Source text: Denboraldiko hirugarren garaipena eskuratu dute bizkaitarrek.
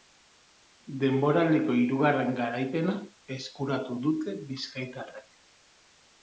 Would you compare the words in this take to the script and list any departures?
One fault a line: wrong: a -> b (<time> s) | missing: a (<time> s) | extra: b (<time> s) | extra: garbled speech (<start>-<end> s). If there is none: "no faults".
no faults